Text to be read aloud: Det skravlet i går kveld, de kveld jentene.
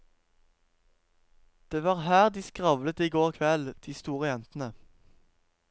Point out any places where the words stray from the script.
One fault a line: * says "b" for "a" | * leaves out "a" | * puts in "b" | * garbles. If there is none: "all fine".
* puts in "var her de"
* says "store" for "kveld"